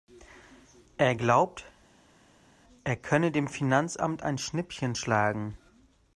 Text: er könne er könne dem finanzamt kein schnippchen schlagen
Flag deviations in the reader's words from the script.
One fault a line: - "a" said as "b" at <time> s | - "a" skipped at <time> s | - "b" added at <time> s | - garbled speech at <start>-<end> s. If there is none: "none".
- "könne" said as "glaubt" at 1.1 s
- "kein" said as "ein" at 4.2 s